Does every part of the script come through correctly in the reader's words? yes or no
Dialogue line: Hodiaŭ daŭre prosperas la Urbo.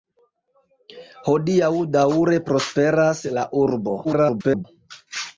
no